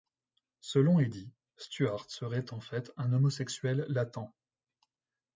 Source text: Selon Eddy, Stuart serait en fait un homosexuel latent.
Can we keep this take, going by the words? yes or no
yes